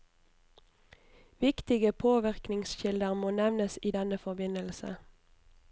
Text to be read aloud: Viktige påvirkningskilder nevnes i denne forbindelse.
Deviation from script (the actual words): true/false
true